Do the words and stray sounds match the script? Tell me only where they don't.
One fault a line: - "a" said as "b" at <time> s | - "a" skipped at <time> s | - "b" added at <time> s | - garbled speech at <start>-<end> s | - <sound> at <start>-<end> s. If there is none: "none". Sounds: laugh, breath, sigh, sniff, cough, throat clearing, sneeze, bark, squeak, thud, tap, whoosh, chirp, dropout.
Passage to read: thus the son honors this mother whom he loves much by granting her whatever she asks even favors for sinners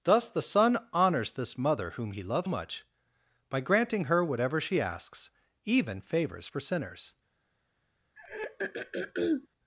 - throat clearing at 8.2-9.5 s